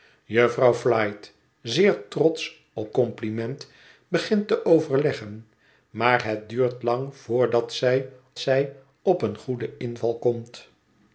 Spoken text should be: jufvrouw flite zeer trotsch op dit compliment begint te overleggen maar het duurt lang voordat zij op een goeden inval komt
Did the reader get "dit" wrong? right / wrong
wrong